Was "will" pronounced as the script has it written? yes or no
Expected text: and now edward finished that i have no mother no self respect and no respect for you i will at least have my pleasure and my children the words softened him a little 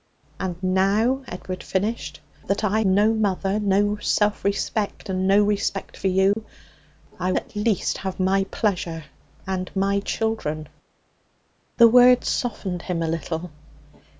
no